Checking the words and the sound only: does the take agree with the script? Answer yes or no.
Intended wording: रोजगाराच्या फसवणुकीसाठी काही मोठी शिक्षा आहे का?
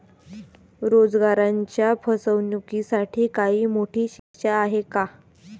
no